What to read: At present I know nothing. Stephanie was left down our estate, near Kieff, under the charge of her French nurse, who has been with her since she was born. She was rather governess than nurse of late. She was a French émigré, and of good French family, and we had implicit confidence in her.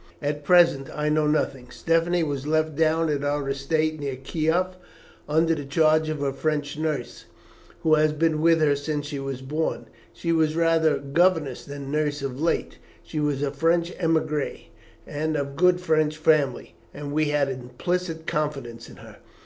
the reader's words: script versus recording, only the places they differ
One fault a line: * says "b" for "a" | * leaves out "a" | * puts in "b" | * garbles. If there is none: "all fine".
* puts in "at"